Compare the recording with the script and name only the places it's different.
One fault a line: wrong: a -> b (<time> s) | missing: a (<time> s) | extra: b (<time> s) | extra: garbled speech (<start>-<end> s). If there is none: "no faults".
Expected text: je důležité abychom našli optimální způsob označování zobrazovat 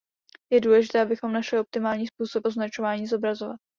no faults